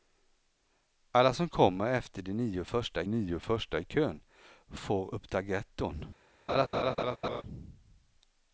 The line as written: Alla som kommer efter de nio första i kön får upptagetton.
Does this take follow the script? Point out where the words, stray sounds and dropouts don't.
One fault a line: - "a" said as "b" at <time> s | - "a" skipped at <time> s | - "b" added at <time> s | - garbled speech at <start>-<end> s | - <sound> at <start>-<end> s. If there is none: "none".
- "nio första" added at 3.1 s
- laugh at 6.5-7.4 s